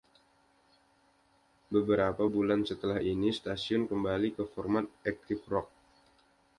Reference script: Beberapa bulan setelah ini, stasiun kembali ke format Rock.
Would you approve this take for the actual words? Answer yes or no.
no